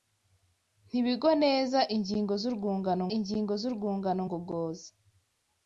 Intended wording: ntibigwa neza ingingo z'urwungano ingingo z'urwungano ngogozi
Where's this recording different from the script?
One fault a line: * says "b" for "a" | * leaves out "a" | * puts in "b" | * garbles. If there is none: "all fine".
all fine